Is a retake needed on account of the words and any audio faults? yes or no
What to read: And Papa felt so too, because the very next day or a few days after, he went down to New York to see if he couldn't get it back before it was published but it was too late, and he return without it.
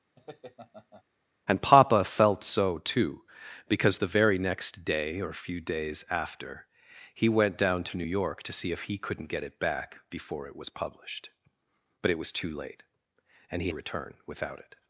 yes